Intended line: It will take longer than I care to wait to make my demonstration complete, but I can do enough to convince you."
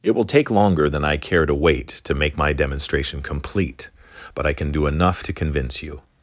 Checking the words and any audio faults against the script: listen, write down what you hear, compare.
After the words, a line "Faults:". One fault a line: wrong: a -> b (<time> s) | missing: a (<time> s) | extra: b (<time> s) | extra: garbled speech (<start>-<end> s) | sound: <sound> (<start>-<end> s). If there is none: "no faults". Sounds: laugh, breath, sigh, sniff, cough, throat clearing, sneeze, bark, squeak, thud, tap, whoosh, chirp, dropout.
It will take longer than I care to wait to make my demonstration complete, but I can do enough to convince you."
Faults:
no faults